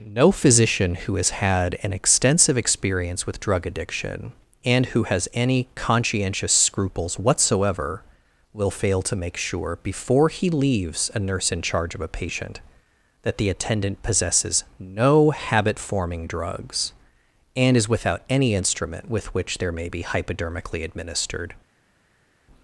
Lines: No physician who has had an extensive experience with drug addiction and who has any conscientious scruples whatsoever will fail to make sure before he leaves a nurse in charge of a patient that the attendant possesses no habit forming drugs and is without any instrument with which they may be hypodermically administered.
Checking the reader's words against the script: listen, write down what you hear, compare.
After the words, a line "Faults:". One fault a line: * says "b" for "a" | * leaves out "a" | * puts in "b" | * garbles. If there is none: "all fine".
No physician who has had an extensive experience with drug addiction and who has any conscientious scruples whatsoever will fail to make sure before he leaves a nurse in charge of a patient that the attendant possesses no habit forming drugs and is without any instrument with which there may be hypodermically administered.
Faults:
* says "there" for "they"